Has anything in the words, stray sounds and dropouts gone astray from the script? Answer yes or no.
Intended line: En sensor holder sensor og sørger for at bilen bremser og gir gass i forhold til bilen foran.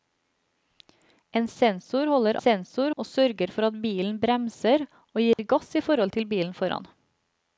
yes